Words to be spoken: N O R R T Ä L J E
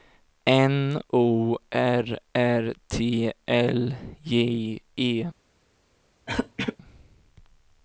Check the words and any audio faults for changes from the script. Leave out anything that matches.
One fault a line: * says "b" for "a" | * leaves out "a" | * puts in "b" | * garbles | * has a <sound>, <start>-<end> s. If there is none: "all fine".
* leaves out "Ä"
* has a throat clearing, 6.3-6.8 s